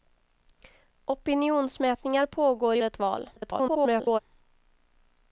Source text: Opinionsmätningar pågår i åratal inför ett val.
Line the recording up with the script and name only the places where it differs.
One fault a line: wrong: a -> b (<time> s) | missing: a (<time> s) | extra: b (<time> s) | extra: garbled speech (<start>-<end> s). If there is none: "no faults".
missing: åratal inför (2.8 s)
extra: garbled speech (3.4-4.2 s)